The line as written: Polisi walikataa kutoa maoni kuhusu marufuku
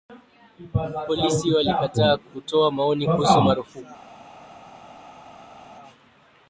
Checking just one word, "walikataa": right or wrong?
right